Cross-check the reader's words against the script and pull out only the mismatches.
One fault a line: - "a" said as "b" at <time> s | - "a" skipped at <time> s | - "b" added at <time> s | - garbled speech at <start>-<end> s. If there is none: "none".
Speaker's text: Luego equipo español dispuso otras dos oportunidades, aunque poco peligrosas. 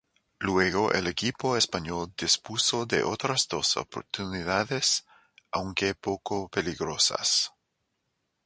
- "el" added at 0.9 s
- "de" added at 2.9 s